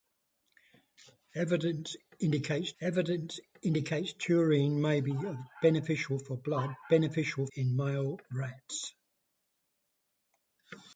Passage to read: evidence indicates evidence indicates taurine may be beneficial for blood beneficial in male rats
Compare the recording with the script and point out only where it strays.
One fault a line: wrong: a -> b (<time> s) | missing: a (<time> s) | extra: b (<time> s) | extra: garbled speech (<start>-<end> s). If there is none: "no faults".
no faults